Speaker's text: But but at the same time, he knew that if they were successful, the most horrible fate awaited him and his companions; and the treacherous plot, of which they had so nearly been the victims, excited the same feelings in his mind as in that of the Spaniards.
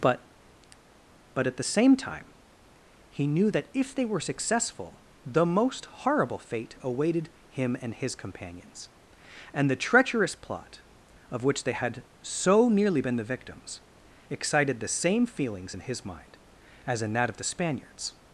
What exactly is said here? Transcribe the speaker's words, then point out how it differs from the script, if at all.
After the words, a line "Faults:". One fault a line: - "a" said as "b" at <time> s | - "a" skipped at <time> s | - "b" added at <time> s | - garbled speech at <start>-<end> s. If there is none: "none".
But but at the same time, he knew that if they were successful, the most horrible fate awaited him and his companions; and the treacherous plot, of which they had so nearly been the victims, excited the same feelings in his mind as in that of the Spaniards.
Faults:
none